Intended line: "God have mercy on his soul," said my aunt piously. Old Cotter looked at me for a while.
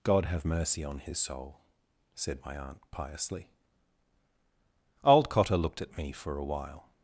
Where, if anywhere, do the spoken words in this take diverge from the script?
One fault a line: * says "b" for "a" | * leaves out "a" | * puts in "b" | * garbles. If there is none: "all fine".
all fine